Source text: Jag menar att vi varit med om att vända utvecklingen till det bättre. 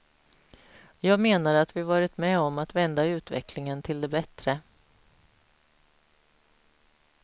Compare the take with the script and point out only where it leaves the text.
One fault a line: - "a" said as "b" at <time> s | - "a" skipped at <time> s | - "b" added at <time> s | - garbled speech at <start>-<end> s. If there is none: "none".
none